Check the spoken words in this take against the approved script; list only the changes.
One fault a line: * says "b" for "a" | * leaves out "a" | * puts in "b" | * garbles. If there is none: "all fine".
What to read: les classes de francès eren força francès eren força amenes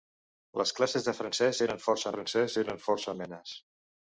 all fine